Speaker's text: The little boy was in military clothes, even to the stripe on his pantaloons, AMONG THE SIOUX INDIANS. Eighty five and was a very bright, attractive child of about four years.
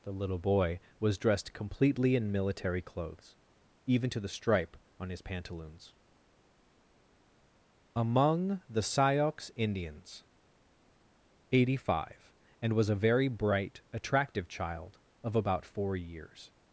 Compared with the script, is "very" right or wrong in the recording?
right